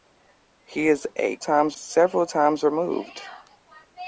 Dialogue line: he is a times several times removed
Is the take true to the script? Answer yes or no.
yes